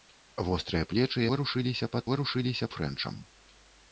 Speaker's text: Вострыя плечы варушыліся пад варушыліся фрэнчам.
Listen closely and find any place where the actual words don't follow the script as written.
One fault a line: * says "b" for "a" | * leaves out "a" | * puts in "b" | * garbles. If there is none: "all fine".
all fine